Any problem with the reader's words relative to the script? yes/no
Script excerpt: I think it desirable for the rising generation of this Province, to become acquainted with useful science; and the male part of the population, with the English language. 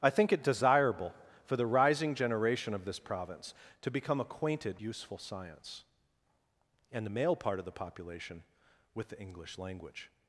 yes